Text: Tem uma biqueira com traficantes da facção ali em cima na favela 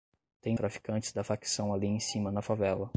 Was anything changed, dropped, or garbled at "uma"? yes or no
yes